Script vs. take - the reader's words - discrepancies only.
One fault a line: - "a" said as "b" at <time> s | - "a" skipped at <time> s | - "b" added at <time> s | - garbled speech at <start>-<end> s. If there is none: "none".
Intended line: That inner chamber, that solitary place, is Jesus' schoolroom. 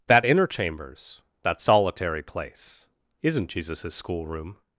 - "chamber" said as "chambers" at 0.5 s
- "is" said as "isn't" at 3.2 s